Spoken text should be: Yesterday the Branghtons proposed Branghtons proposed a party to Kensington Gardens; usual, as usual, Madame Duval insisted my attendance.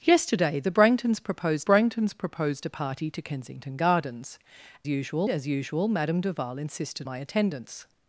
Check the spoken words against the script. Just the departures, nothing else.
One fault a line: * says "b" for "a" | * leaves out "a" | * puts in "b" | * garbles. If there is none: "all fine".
all fine